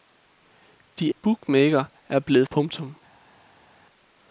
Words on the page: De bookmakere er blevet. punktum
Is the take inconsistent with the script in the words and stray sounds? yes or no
no